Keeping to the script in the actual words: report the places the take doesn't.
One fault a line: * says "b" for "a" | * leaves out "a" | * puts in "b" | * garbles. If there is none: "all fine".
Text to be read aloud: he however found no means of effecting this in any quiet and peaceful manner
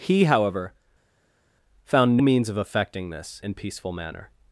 * leaves out "no"
* leaves out "in any quiet"